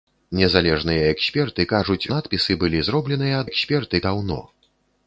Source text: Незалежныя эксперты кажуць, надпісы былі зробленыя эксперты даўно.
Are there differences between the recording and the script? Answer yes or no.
no